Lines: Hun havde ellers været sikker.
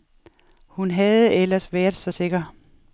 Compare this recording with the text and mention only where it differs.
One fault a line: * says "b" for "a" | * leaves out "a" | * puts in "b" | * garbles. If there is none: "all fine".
* puts in "så"